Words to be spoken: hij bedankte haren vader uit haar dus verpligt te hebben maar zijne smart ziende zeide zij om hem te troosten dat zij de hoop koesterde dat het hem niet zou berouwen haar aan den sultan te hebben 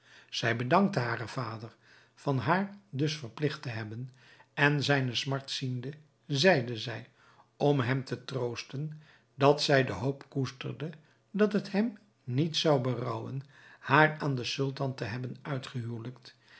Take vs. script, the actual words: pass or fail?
fail